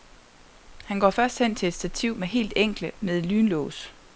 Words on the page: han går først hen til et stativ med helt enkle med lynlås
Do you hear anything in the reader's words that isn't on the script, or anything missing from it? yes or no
no